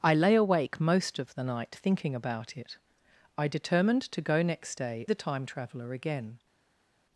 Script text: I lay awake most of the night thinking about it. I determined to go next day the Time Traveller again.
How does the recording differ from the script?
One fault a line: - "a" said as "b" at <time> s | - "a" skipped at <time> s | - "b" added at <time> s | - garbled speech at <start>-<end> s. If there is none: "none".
none